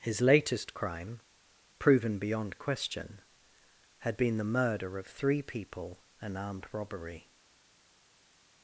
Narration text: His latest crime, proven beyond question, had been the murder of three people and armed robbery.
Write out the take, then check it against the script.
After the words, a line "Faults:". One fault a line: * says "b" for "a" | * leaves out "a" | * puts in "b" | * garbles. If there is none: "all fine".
His latest crime, proven beyond question, had been the murder of three people and armed robbery.
Faults:
all fine